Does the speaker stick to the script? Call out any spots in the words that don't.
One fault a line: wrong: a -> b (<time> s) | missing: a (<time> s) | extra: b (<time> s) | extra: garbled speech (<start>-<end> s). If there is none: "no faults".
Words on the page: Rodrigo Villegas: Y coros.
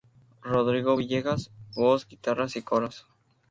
extra: Voz guitarras (1.7 s)